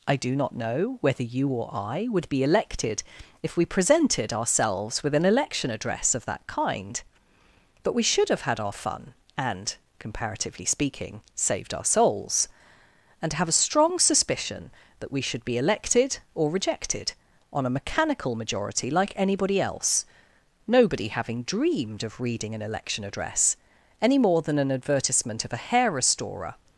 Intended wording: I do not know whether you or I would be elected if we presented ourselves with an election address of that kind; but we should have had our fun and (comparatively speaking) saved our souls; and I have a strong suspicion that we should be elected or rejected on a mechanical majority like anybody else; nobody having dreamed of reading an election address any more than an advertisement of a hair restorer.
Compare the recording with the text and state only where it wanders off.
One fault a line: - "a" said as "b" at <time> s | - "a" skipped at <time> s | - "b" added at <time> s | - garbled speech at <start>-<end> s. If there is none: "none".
- "I" skipped at 13.3 s